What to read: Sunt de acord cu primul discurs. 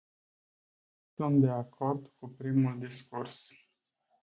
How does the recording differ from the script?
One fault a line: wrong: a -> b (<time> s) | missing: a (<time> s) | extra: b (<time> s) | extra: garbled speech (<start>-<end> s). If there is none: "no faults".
no faults